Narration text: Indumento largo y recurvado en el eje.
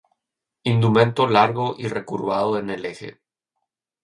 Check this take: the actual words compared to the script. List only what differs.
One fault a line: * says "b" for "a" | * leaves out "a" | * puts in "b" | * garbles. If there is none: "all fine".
all fine